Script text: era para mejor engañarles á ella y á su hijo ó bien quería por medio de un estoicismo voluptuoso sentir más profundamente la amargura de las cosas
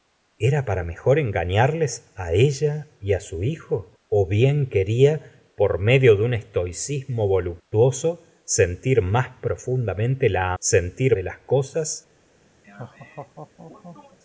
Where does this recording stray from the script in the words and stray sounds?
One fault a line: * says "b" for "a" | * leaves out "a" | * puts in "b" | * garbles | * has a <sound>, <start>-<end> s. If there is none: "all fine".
* says "sentir" for "amargura"
* has a laugh, 12.6-14.2 s